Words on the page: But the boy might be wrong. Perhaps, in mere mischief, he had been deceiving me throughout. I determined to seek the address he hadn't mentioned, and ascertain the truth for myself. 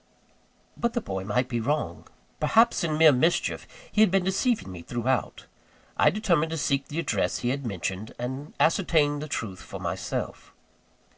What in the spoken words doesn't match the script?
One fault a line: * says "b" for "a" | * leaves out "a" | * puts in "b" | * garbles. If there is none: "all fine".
* says "had" for "hadn't"